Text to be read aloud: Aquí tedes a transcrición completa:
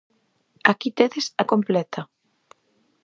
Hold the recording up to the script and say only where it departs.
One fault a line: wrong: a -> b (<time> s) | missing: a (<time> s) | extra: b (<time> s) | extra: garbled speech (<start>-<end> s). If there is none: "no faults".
missing: transcrición (1.4 s)